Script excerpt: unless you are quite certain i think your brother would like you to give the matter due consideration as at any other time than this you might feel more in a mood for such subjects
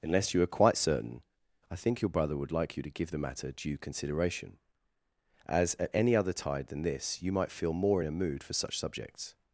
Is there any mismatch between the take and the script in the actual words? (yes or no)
yes